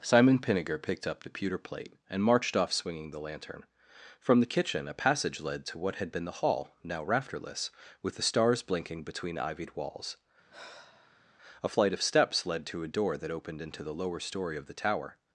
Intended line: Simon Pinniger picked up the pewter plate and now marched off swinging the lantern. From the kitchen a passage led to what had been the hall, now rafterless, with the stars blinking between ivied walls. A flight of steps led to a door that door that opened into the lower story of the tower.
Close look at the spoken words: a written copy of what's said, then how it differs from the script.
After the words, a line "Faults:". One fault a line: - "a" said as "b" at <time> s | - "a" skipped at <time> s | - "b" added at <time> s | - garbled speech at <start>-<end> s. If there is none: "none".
Simon Pinniger picked up the pewter plate and marched off swinging the lantern. From the kitchen a passage led to what had been the hall, now rafterless, with the stars blinking between ivied walls. A flight of steps led to a door that opened into the lower story of the tower.
Faults:
- "now" skipped at 2.2 s
- "door that" skipped at 13.3 s